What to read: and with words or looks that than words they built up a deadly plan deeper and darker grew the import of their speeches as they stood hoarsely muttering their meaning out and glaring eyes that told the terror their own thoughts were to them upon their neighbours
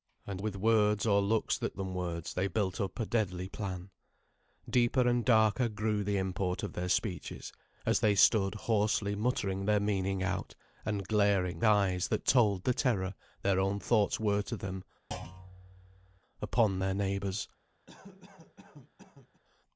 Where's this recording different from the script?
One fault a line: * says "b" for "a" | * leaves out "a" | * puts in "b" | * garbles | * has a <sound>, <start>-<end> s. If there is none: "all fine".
* has a thud, 15.1-16.2 s
* has a cough, 17.9-19.4 s